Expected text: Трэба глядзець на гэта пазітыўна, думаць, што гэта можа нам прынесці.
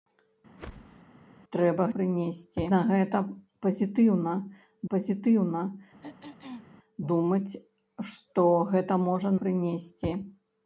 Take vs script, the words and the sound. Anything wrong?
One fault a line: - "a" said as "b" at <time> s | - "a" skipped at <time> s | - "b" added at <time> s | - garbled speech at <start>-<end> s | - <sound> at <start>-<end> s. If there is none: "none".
- whoosh at 0.6-1.0 s
- "глядзець" said as "прынесці" at 2.0 s
- "пазітыўна" added at 4.9 s
- throat clearing at 6.0-6.8 s
- "нам" skipped at 9.3 s